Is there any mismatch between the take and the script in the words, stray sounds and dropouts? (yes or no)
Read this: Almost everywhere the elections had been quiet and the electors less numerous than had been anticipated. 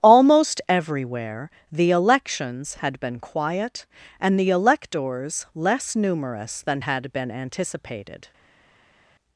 no